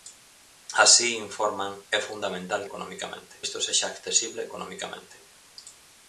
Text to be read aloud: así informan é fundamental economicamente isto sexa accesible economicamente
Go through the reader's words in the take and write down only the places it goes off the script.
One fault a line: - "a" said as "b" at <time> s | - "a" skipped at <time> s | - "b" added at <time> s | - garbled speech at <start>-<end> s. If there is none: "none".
none